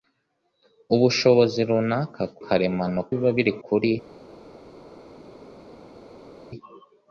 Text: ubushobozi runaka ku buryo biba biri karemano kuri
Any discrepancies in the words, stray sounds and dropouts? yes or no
yes